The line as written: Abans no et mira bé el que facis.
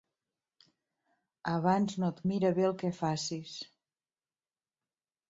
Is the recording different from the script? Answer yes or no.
no